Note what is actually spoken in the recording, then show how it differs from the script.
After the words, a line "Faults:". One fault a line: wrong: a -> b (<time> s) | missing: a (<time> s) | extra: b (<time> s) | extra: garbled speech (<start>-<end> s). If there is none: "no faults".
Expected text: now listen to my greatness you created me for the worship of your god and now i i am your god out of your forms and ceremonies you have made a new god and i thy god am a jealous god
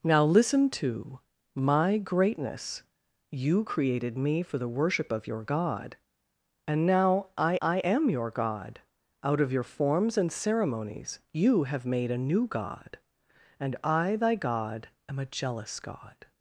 now listen to my greatness you created me for the worship of your god and now i i am your god out of your forms and ceremonies you have made a new god and i thy god am a jealous god
Faults:
no faults